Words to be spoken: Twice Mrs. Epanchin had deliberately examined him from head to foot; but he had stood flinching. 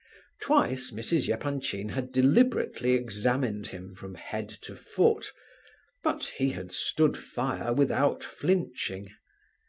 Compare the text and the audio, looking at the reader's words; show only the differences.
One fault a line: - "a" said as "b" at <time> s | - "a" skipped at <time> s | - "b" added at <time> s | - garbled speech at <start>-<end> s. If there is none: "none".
- "fire without" added at 7.2 s